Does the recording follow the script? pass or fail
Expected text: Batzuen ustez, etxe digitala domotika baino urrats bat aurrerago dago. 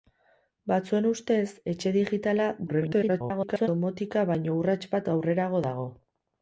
fail